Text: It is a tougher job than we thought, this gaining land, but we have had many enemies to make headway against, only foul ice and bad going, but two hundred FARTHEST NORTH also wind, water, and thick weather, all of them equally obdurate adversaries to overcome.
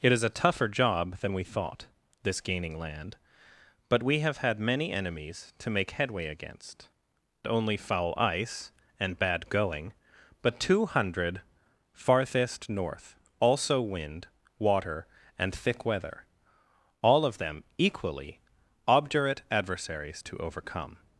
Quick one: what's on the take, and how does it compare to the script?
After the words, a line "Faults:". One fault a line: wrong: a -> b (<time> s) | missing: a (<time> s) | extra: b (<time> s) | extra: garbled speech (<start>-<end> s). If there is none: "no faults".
It is a tougher job than we thought, this gaining land, but we have had many enemies to make headway against, only foul ice and bad going, but two hundred FARTHEST NORTH also wind, water, and thick weather, all of them equally obdurate adversaries to overcome.
Faults:
no faults